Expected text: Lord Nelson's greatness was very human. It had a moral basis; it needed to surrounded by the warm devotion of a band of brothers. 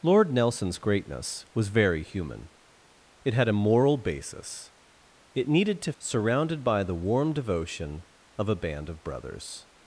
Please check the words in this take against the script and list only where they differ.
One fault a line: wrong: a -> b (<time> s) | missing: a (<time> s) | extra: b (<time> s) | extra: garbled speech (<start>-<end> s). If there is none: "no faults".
no faults